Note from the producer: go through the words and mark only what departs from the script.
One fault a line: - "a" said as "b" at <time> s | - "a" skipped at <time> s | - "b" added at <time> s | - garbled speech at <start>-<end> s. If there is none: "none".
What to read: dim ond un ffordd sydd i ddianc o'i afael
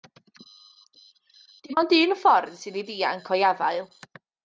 none